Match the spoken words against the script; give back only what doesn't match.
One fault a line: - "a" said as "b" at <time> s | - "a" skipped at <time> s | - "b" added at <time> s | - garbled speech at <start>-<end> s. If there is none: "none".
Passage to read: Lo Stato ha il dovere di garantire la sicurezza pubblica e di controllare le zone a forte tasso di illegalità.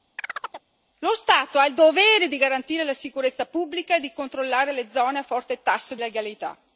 - "di" skipped at 6.0 s